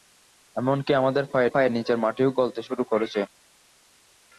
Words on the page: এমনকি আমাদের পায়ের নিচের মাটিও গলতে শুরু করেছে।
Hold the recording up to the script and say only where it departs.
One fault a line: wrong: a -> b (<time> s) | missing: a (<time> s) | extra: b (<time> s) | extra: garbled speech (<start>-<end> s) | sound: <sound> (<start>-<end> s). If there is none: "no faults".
extra: পায়ের (1.5 s)